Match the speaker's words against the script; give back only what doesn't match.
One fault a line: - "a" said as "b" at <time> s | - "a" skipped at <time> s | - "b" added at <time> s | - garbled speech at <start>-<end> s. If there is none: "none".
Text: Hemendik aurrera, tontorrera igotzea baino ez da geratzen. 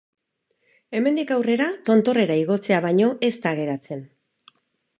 none